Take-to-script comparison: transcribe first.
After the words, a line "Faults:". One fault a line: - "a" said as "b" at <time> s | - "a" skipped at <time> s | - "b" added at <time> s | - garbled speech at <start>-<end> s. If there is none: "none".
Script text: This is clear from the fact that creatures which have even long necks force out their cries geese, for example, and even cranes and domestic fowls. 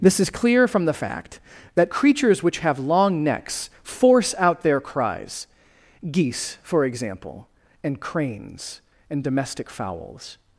This is clear from the fact that creatures which have long necks force out their cries geese, for example, and cranes and domestic fowls.
Faults:
- "even" skipped at 2.8 s
- "even" skipped at 8.0 s